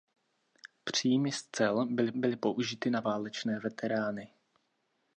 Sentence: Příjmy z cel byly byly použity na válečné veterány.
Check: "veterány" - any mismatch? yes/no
no